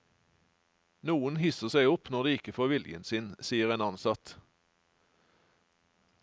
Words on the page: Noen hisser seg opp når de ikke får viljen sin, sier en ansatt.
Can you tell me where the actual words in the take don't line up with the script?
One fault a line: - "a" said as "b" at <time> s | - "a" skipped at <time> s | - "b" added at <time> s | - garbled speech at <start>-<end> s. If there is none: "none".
none